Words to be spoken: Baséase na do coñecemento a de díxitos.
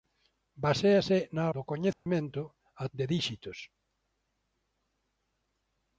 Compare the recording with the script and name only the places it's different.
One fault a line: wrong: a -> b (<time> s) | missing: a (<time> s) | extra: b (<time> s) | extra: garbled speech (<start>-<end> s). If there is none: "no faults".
no faults